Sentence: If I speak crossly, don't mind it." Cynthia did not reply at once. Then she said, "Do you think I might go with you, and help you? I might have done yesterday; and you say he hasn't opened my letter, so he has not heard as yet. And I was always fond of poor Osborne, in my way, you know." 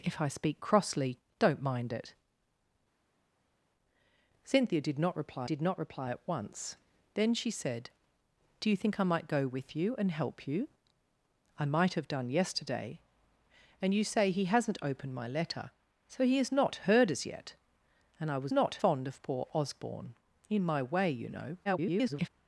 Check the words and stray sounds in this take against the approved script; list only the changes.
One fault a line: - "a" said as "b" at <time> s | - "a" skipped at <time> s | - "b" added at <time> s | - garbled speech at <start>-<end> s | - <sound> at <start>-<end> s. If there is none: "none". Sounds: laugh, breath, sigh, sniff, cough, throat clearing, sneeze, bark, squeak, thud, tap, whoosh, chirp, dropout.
- "did not reply" added at 5.4 s
- "always" said as "not" at 18.5 s
- garbled speech at 21.6-22.3 s